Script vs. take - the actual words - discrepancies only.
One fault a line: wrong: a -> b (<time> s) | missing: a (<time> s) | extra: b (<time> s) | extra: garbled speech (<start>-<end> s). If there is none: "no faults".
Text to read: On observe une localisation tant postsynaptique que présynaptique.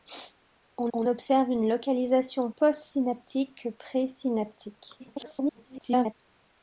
extra: on (0.9 s)
missing: tant (2.5 s)
extra: garbled speech (5.0-6.1 s)